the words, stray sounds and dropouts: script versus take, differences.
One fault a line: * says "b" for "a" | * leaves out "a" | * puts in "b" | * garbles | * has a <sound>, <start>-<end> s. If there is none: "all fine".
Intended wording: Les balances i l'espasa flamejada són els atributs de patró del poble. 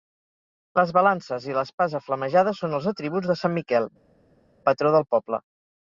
* puts in "sant Miquel"